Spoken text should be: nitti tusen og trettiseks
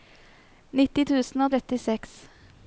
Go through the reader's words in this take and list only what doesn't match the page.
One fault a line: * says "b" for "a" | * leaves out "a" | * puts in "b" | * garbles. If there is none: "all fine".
all fine